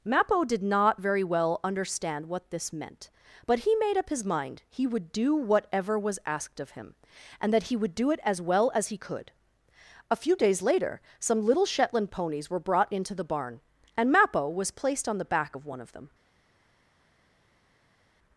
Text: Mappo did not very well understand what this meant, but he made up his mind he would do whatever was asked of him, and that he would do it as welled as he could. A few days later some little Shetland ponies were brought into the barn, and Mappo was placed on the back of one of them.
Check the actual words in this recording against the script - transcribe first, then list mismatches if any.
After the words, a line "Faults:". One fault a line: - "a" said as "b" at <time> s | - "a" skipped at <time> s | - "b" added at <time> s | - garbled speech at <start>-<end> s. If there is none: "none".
Mappo did not very well understand what this meant, but he made up his mind he would do whatever was asked of him, and that he would do it as well as he could. A few days later some little Shetland ponies were brought into the barn, and Mappo was placed on the back of one of them.
Faults:
- "welled" said as "well" at 8.4 s